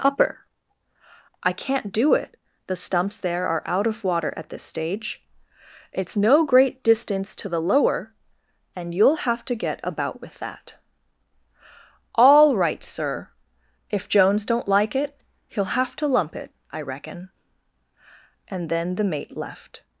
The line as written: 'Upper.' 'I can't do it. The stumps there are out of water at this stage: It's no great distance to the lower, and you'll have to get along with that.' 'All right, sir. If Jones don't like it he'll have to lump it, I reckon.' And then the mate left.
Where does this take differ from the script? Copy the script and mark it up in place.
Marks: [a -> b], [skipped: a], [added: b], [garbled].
'Upper.' 'I can't do it. The stumps there are out of water at this stage: It's no great distance to the lower, and you'll have to get [along -> about] with that.' 'All right, sir. If Jones don't like it he'll have to lump it, I reckon.' And then the mate left.